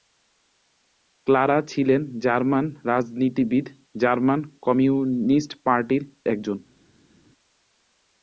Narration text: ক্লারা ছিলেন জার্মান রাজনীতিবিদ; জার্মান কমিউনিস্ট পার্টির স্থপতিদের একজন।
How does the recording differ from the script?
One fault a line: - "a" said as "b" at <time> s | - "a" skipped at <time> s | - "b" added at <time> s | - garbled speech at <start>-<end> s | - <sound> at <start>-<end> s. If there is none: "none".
- "স্থপতিদের" skipped at 6.0 s